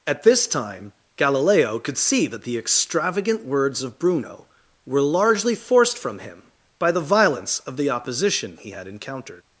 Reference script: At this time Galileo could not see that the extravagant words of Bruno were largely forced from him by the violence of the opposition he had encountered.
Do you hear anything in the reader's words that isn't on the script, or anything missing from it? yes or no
yes